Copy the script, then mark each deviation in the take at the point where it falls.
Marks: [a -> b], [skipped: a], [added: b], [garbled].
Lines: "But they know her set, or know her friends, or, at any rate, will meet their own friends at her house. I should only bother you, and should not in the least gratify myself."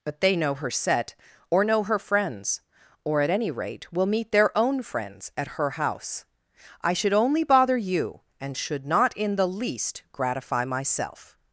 "But they know her set, or know her friends, or, at any rate, will meet their own friends at her house. I should only bother you, and should not in the least gratify myself."